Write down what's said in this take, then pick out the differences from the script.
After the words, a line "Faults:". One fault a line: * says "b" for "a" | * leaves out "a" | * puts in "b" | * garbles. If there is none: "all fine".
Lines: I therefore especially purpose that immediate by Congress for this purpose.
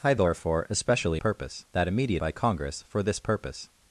I therefore especially purpose that immediate by Congress for this purpose.
Faults:
all fine